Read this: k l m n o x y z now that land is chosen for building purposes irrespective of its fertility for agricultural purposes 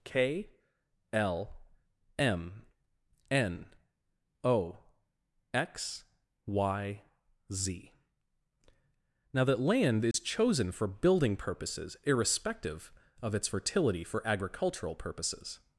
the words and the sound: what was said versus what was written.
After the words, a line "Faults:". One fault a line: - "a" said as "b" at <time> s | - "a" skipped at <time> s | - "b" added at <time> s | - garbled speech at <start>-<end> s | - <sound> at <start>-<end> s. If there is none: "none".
k l m n o x y z now that land is chosen for building purposes irrespective of its fertility for agricultural purposes
Faults:
- dropout at 10.1-10.1 s